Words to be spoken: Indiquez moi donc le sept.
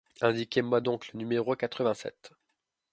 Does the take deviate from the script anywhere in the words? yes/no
yes